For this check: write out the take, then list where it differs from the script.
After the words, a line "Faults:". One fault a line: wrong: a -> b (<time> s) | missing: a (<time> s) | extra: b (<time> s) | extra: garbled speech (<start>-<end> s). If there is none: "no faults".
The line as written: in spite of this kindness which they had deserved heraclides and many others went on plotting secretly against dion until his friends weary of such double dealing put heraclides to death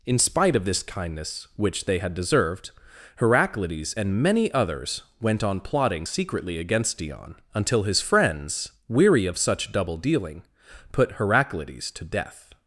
in spite of this kindness which they had deserved heraclides and many others went on plotting secretly against dion until his friends weary of such double dealing put heraclides to death
Faults:
no faults